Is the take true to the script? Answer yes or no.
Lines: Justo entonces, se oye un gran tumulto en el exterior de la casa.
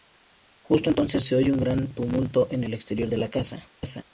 yes